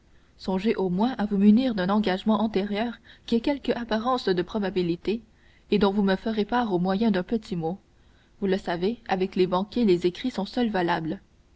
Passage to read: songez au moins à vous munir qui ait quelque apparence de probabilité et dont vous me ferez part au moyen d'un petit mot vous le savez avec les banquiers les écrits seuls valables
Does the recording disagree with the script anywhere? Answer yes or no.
yes